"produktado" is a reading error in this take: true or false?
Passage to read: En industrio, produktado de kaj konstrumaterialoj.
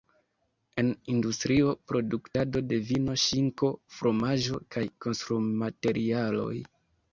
false